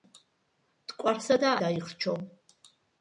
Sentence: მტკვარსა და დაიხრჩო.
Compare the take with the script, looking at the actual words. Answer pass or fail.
pass